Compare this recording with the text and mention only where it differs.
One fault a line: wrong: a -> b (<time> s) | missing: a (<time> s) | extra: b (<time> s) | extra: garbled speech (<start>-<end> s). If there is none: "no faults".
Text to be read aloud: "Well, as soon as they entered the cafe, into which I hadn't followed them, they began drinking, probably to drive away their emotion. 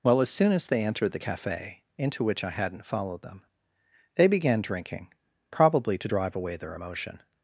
no faults